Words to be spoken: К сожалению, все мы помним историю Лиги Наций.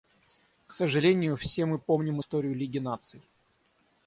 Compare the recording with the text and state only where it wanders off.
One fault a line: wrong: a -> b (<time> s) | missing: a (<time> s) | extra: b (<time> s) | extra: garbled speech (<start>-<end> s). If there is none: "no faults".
no faults